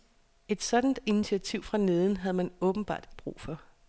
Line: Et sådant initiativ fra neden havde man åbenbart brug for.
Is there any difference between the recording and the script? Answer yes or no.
no